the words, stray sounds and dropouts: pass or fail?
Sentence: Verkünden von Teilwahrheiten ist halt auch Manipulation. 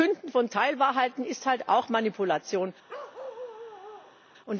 fail